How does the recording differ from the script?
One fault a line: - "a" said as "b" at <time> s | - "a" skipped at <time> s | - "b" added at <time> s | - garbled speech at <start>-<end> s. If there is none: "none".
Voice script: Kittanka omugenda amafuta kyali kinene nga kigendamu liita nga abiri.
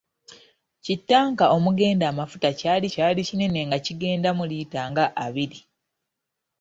- "kyali" added at 2.9 s